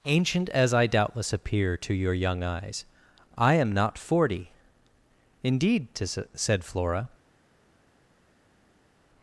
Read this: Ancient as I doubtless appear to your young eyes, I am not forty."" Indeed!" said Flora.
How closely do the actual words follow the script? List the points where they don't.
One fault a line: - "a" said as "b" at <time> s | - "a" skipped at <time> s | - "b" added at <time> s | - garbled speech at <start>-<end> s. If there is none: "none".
none